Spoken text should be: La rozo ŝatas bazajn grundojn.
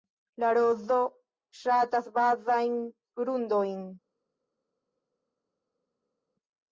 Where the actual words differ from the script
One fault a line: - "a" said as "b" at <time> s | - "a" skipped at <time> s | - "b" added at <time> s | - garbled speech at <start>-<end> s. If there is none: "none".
none